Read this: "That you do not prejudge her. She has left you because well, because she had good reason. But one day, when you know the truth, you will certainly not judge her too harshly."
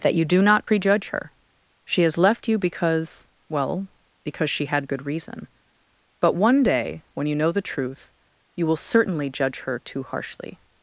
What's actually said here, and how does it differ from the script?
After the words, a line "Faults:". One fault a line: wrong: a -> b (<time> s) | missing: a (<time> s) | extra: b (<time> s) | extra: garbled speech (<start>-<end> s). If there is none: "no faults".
"That you do not prejudge her. She has left you because well, because she had good reason. But one day, when you know the truth, you will certainly judge her too harshly."
Faults:
missing: not (9.3 s)